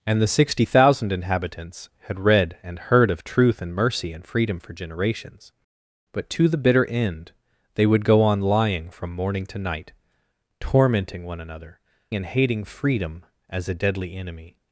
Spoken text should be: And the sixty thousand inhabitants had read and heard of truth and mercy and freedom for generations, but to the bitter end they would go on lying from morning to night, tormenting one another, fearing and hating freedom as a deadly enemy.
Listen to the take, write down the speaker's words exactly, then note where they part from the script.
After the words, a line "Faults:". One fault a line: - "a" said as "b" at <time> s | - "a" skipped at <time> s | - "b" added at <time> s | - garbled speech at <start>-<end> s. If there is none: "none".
And the sixty thousand inhabitants had read and heard of truth and mercy and freedom for generations, but to the bitter end they would go on lying from morning to night, tormenting one another, and hating freedom as a deadly enemy.
Faults:
- "fearing" skipped at 11.8 s